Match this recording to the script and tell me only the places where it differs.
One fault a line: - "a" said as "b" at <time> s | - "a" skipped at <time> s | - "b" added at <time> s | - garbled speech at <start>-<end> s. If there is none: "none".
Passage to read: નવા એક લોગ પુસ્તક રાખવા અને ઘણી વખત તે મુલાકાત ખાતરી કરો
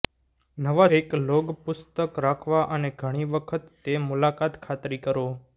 none